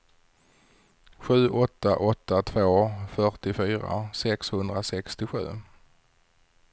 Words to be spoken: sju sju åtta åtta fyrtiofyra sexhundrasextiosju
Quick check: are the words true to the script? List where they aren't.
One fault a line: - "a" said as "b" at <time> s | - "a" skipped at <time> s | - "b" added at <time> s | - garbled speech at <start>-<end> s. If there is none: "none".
- "sju" said as "åtta" at 1.5 s
- "åtta" said as "två" at 2.4 s